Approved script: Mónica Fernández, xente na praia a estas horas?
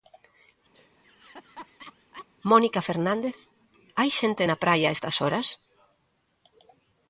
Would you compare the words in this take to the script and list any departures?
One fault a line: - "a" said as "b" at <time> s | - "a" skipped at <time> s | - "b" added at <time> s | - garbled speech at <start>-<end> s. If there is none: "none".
- "hai" added at 4.0 s